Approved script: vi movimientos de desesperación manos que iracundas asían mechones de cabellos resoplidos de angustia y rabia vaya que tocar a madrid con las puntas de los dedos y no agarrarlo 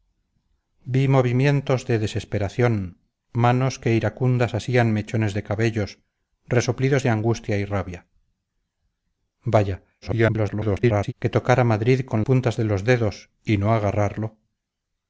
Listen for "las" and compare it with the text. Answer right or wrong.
wrong